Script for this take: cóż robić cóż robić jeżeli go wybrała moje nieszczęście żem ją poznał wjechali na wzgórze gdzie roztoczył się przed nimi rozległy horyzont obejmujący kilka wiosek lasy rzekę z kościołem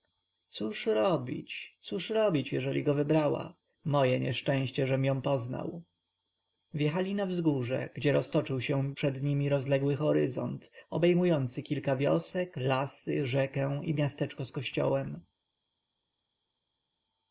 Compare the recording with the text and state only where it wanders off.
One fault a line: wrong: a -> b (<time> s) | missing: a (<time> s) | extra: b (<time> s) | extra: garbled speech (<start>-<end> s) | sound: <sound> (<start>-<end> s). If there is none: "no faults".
extra: i miasteczko (13.8 s)